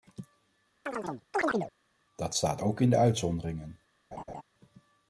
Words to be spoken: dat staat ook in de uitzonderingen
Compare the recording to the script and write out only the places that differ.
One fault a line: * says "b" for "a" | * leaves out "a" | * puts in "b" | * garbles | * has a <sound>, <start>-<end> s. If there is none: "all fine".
* has a chirp, 0.9-1.7 s
* has a laugh, 4.1-4.4 s